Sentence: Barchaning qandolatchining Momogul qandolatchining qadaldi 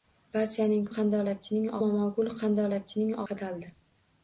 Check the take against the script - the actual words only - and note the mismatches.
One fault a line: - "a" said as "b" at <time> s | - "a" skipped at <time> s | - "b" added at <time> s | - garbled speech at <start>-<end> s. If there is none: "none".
none